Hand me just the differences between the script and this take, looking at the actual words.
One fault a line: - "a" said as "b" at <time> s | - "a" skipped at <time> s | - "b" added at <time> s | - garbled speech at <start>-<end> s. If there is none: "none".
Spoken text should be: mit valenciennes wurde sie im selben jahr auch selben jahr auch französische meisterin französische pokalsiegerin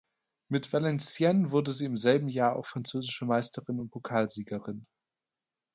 - "selben jahr auch" skipped at 2.6 s
- "französische" said as "und" at 3.8 s